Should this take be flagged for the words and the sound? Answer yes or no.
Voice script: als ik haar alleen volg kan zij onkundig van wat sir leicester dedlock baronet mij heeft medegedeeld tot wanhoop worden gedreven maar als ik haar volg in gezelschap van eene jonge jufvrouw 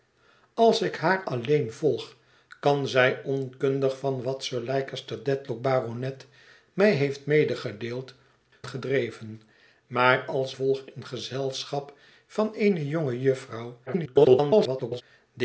yes